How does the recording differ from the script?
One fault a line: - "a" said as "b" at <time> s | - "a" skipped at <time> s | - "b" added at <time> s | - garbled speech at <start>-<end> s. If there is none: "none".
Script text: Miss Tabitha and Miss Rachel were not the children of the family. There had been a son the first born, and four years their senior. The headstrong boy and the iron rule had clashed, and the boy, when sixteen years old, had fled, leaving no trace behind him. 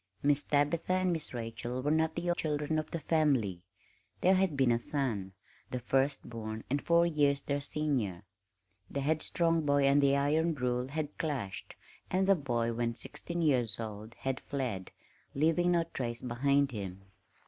none